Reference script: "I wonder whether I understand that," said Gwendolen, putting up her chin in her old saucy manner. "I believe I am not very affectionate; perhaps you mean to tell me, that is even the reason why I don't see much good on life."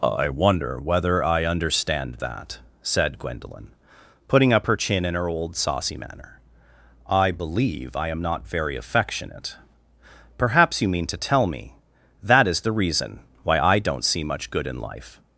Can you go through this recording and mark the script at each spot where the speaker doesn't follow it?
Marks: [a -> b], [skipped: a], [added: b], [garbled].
"I wonder whether I understand that," said Gwendolen, putting up her chin in her old saucy manner. "I believe I am not very affectionate; perhaps you mean to tell me, that is [skipped: even] the reason why I don't see much good [on -> in] life."